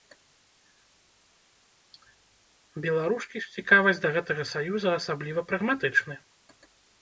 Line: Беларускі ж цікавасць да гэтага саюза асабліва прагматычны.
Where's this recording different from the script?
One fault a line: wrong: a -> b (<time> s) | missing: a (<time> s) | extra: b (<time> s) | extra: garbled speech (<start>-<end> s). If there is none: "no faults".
no faults